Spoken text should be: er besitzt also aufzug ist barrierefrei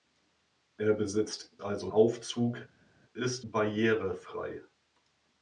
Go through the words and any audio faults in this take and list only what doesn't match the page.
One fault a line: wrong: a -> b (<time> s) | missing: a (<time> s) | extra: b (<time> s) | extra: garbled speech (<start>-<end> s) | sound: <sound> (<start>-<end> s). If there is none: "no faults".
no faults